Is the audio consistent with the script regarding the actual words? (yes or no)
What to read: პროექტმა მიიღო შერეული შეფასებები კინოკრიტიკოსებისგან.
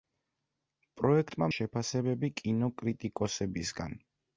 no